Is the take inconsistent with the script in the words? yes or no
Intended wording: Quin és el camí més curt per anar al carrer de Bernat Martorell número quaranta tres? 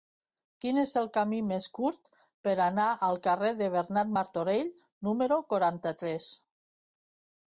no